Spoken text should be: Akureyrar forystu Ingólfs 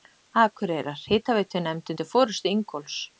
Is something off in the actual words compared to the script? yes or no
yes